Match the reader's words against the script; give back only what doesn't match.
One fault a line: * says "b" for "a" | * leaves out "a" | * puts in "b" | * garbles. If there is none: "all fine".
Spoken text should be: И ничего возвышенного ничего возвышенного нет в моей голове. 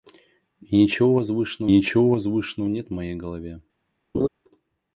all fine